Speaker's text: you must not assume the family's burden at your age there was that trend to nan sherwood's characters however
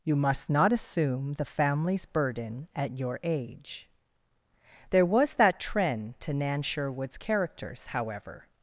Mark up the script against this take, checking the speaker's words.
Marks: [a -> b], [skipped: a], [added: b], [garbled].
you must not assume the family's burden at your age there was that trend to nan sherwood's characters however